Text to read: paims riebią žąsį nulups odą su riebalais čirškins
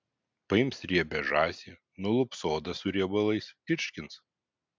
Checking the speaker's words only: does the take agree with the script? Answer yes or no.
yes